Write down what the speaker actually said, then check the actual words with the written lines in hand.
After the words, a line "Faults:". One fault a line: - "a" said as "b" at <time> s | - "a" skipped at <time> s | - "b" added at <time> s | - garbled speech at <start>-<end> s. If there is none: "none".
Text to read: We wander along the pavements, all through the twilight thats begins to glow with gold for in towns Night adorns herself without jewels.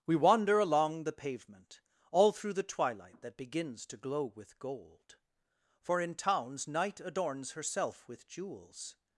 We wander along the pavement, all through the twilight that begins to glow with gold for in towns Night adorns herself with jewels.
Faults:
- "pavements" said as "pavement" at 1.1 s
- "thats" said as "that" at 3.2 s
- "without" said as "with" at 8.1 s